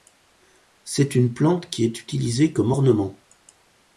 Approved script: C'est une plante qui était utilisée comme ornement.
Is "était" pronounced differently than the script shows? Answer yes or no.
yes